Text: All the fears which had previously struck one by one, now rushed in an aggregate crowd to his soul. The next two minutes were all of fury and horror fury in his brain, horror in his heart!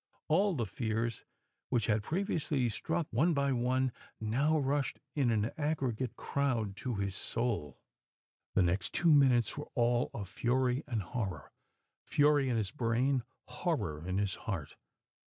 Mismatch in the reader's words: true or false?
false